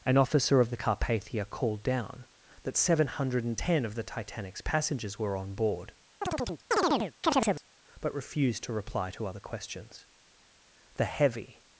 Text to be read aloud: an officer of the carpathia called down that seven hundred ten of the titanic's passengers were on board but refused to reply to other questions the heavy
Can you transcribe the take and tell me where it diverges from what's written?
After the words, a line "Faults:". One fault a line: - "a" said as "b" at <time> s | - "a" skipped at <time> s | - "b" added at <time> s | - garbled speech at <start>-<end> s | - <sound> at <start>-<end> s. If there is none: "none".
an officer of the carpathia called down that seven hundred ten of the titanic's passengers were on board but refused to reply to other questions the heavy
Faults:
- chirp at 6.2-7.6 s